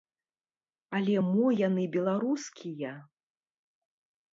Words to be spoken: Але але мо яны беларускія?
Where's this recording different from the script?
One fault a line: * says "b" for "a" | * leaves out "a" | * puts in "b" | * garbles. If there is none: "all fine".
* leaves out "але"